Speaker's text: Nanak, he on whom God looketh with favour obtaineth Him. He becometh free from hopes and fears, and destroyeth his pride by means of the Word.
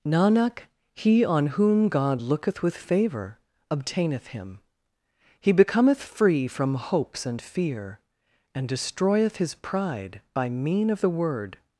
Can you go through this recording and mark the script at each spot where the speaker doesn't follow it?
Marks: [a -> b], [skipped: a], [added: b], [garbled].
Nanak, he on whom God looketh with favour obtaineth Him. He becometh free from hopes and [fears, -> fear] and destroyeth his pride by [means -> mean] of the Word.